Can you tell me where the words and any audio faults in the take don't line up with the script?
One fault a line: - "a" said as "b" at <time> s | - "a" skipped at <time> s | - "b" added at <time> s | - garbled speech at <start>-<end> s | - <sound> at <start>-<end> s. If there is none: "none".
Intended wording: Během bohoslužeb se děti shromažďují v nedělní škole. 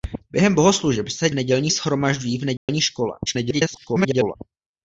- "děti" said as "nedělní" at 1.3 s
- dropout at 2.6-2.7 s
- garbled speech at 3.3-4.4 s